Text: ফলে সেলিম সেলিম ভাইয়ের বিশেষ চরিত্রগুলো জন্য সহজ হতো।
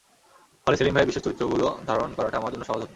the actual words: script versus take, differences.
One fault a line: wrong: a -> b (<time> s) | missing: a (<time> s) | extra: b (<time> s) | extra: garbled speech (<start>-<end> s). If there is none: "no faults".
missing: সেলিম (0.9 s)
extra: ধারণ করাটা আমার (1.9 s)